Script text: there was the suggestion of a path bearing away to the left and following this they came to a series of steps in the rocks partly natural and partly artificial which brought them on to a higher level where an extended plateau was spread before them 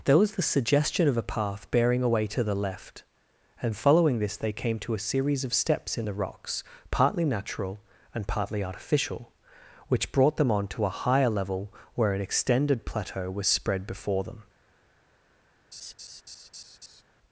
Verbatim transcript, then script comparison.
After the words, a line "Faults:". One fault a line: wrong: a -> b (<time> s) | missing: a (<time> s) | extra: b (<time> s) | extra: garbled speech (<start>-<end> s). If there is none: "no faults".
there was the suggestion of a path bearing away to the left and following this they came to a series of steps in the rocks partly natural and partly artificial which brought them on to a higher level where an extended plateau was spread before them
Faults:
no faults